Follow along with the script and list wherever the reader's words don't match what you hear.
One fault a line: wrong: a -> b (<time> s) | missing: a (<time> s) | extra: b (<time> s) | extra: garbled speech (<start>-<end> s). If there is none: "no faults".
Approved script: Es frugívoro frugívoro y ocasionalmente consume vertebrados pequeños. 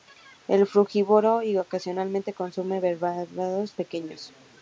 missing: frugívoro (1.4 s)